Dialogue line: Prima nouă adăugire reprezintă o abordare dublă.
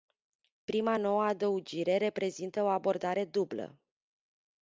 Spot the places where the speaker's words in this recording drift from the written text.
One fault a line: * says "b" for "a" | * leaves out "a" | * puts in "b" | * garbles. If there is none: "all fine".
all fine